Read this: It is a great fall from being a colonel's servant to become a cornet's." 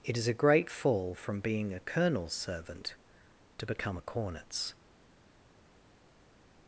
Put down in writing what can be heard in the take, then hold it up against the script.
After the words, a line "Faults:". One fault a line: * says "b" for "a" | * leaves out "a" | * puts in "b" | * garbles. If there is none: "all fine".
It is a great fall from being a colonel's servant to become a cornet's."
Faults:
all fine